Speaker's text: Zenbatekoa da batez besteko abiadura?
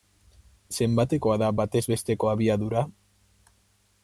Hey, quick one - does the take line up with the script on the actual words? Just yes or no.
yes